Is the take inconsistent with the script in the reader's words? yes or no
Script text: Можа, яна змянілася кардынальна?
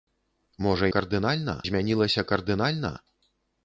yes